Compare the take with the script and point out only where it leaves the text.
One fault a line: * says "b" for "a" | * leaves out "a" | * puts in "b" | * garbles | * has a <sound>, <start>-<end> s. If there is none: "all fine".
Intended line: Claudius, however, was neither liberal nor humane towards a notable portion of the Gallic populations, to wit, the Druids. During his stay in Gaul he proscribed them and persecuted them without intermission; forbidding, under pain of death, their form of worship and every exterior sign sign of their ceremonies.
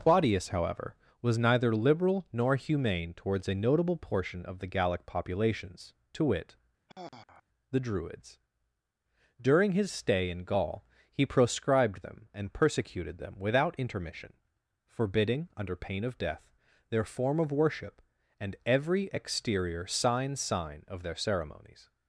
* has a sigh, 6.9-7.4 s